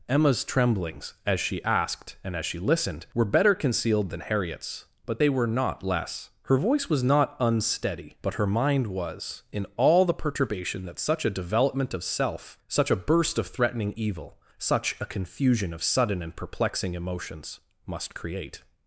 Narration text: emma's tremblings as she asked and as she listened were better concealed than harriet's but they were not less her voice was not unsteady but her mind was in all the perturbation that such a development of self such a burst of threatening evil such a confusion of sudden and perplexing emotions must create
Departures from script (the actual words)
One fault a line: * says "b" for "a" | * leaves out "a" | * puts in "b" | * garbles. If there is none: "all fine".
all fine